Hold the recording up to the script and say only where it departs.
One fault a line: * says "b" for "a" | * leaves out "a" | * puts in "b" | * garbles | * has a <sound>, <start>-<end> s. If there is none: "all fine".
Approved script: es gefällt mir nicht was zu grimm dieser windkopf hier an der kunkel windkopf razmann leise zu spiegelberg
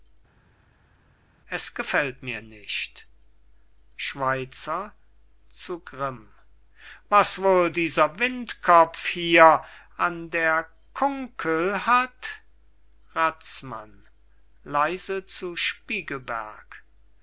* says "schweizer" for "was"
* puts in "was wohl"
* says "hat" for "windkopf"